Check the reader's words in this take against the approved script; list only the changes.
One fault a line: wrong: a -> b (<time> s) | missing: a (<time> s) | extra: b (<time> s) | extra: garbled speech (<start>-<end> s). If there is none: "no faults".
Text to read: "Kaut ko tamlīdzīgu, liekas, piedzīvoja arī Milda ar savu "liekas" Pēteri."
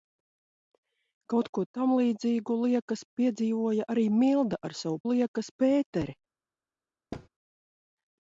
no faults